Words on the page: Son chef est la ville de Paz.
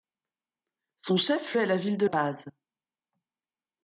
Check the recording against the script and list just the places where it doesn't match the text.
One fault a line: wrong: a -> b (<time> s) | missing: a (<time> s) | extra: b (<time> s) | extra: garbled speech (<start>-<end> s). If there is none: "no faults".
no faults